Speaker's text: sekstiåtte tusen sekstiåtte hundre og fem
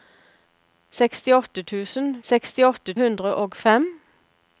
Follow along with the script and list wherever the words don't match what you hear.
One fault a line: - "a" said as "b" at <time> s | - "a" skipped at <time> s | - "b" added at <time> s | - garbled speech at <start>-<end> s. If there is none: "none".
none